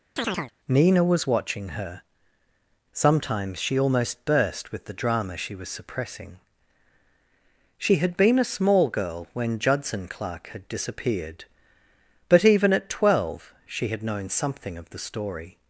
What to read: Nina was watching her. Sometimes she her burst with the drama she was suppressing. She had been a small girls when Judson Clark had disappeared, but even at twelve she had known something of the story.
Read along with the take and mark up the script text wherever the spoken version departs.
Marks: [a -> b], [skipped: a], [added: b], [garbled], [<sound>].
[chirp] Nina was watching her. Sometimes she [her -> almost] burst with the drama she was suppressing. She had been a small [girls -> girl] when Judson Clark had disappeared, but even at twelve she had known something of the story.